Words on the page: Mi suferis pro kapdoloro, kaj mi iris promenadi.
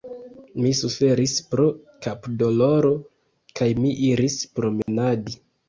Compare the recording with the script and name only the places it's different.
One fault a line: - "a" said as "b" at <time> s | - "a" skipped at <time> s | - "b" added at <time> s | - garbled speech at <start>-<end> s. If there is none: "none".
none